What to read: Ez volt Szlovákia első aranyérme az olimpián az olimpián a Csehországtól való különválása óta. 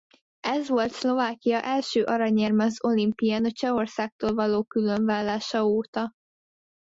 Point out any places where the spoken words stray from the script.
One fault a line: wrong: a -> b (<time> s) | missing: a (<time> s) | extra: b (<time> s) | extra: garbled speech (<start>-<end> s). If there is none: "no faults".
missing: az olimpián (3.4 s)